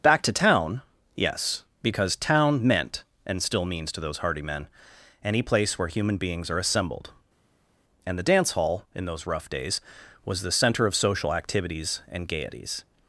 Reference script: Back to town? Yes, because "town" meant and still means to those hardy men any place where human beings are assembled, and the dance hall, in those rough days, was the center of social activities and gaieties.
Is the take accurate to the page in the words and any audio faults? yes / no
yes